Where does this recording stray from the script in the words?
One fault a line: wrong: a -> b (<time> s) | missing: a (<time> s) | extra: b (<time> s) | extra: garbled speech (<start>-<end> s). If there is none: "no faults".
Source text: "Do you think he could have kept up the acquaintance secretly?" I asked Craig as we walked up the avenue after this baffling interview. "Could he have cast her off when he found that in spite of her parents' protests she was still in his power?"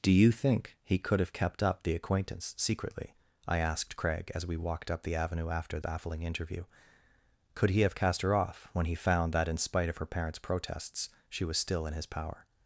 missing: this (5.8 s)